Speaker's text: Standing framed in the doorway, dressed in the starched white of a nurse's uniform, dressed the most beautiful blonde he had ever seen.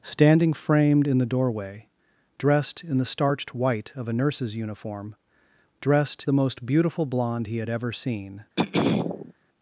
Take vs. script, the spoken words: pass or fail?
pass